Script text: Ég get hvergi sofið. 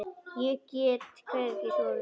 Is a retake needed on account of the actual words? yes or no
no